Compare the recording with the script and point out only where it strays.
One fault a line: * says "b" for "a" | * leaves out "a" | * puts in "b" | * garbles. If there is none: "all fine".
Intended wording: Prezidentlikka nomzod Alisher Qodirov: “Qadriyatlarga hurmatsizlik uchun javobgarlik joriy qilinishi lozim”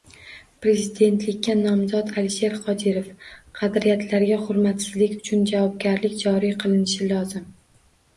all fine